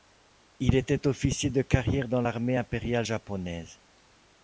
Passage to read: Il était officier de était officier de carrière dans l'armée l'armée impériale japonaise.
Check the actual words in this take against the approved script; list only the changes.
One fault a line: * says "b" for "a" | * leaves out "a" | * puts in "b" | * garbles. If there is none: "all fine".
* leaves out "était officier de"
* leaves out "l'armée"